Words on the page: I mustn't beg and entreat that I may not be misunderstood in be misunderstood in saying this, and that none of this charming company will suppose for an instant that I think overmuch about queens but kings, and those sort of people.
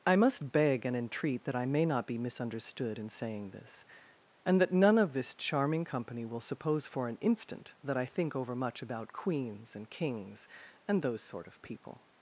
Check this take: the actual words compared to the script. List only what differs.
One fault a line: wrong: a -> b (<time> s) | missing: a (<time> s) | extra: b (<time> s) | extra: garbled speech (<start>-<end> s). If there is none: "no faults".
wrong: mustn't -> must (0.1 s)
missing: be misunderstood in (3.1 s)
wrong: but -> and (9.7 s)